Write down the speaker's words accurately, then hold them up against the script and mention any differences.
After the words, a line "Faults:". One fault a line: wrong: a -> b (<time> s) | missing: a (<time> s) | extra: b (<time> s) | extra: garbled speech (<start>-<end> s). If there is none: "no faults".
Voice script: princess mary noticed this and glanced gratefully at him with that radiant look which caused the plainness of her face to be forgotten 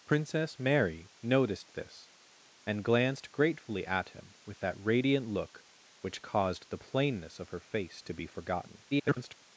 princess mary noticed this and glanced gratefully at him with that radiant look which caused the plainness of her face to be forgotten [garbled]
Faults:
extra: garbled speech (8.9-9.4 s)